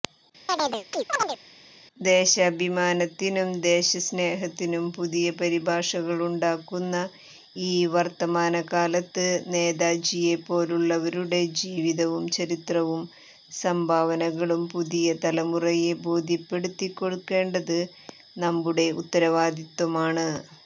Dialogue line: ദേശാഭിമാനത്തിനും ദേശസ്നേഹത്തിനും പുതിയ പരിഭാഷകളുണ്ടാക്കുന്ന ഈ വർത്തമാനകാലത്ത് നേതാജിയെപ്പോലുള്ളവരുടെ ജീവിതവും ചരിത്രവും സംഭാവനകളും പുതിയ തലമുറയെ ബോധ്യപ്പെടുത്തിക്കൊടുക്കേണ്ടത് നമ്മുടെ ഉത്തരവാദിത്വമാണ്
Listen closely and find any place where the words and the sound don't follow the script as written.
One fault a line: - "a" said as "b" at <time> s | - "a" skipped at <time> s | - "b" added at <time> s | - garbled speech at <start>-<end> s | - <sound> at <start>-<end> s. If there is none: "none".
- chirp at 0.5-1.4 s